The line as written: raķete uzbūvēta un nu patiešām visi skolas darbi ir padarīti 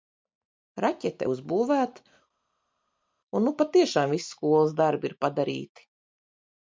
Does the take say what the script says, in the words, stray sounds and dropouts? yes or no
yes